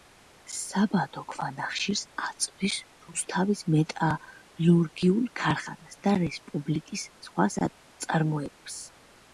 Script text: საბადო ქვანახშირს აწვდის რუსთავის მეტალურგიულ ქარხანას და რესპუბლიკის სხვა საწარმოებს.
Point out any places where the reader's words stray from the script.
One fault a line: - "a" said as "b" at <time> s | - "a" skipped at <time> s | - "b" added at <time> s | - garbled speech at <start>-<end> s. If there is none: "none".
none